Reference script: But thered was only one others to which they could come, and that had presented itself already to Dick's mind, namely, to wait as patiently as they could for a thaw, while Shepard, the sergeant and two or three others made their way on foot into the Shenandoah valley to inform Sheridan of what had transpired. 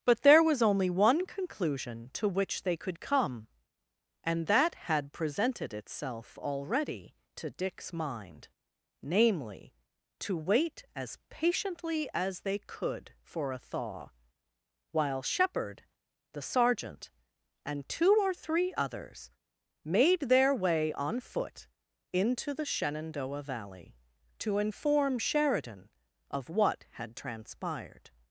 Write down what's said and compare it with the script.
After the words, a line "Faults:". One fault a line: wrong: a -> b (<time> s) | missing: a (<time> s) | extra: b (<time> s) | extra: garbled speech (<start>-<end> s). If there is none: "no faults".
But there was only one conclusion to which they could come, and that had presented itself already to Dick's mind, namely, to wait as patiently as they could for a thaw, while Shepard, the sergeant and two or three others made their way on foot into the Shenandoah valley to inform Sheridan of what had transpired.
Faults:
wrong: thered -> there (0.2 s)
wrong: others -> conclusion (1.2 s)